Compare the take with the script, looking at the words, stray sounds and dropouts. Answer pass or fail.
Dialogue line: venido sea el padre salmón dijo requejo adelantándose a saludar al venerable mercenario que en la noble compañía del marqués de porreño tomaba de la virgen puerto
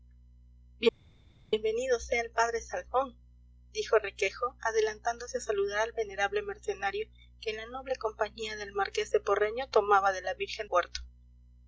pass